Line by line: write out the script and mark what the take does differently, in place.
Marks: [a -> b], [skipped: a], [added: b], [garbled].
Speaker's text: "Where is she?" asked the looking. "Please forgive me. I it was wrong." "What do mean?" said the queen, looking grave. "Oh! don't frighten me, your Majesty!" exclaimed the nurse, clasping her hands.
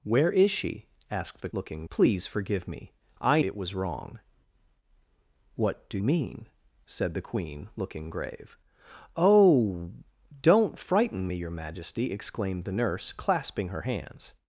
"Where is she?" asked the looking. "Please forgive me. I it was wrong." "What do mean?" said the queen, looking grave. "Oh! don't frighten me, your Majesty!" exclaimed the nurse, clasping her hands.